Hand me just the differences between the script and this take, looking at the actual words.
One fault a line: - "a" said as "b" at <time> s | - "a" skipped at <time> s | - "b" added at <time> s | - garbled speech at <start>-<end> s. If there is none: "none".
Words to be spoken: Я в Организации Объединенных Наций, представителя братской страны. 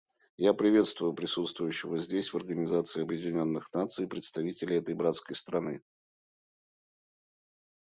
- "приветствую присутствующего здесь" added at 0.6 s
- "этой" added at 4.8 s